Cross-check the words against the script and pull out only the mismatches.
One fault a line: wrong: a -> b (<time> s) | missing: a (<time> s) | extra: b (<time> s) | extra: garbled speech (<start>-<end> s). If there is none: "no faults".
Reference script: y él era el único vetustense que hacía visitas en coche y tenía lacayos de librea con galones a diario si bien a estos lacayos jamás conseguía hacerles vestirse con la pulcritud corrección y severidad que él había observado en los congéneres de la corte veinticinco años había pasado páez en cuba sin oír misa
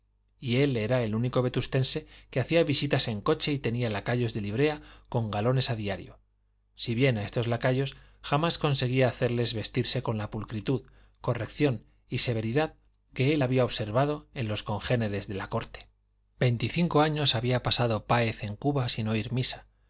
no faults